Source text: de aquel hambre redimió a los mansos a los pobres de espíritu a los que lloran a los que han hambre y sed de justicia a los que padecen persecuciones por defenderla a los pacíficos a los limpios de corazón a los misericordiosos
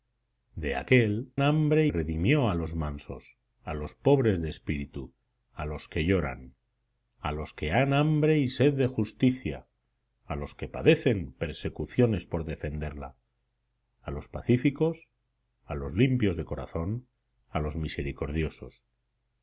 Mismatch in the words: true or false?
false